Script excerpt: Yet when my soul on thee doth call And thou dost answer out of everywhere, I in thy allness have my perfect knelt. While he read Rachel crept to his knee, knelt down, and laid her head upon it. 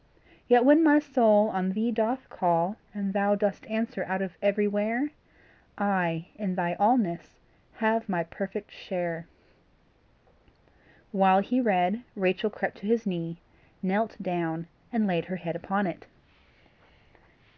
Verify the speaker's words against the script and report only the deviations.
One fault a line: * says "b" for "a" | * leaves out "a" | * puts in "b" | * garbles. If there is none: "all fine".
* says "share" for "knelt"